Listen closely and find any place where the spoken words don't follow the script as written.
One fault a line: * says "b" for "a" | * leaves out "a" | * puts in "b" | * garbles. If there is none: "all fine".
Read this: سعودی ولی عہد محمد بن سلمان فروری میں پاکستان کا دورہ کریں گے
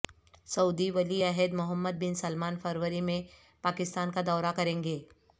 all fine